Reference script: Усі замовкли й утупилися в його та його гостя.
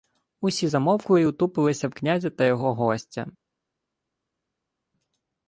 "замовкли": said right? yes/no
yes